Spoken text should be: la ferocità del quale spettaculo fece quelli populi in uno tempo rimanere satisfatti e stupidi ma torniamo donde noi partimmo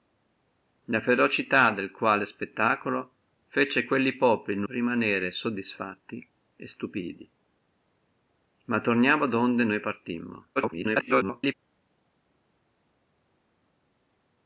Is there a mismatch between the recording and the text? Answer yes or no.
yes